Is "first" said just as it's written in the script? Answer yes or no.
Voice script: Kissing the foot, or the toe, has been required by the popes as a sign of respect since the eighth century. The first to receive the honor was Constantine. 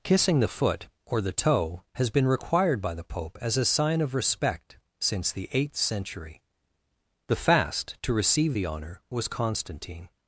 no